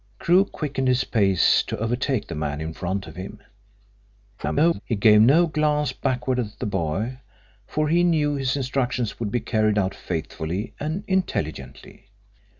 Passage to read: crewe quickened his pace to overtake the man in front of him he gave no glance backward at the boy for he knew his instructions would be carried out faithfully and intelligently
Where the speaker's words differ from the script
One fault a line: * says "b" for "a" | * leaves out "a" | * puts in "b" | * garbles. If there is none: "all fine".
* garbles